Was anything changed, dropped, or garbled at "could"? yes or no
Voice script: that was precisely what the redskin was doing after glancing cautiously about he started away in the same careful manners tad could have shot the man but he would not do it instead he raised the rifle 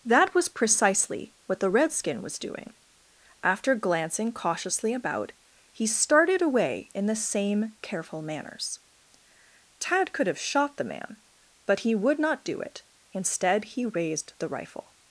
no